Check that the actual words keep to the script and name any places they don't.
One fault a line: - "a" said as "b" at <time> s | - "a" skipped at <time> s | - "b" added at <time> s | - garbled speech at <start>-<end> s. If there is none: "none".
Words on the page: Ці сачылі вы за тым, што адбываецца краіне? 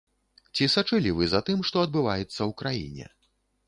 - "ў" added at 2.4 s